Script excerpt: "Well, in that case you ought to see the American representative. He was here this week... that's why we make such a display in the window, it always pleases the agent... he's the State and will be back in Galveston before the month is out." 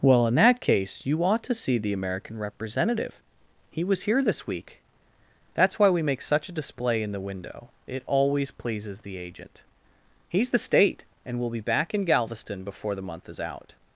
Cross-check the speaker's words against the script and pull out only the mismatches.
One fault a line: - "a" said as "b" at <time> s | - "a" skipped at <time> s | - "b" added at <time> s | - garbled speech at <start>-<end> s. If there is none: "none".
none